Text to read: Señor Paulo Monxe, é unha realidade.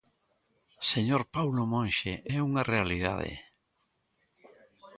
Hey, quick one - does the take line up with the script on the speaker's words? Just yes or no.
yes